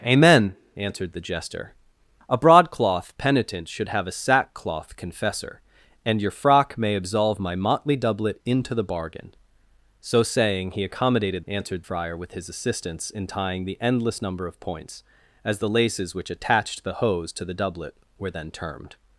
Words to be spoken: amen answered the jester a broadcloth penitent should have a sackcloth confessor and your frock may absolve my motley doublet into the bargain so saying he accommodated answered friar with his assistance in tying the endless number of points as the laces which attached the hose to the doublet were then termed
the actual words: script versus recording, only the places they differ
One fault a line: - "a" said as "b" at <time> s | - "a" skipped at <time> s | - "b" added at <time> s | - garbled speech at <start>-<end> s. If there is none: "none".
none